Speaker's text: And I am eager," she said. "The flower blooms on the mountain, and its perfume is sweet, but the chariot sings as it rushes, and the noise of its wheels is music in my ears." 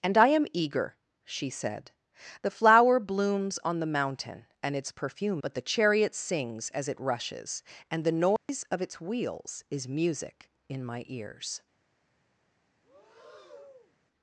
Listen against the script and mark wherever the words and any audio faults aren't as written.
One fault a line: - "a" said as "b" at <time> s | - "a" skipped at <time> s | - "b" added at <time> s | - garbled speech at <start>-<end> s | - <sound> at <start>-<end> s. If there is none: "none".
- "is sweet" skipped at 5.4 s
- dropout at 8.4-8.5 s
- breath at 12.8-14.0 s